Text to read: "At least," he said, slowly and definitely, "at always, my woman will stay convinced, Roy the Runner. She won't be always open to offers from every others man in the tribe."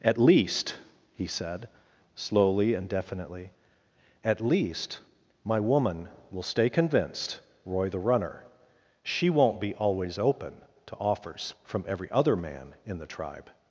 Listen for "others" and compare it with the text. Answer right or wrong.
wrong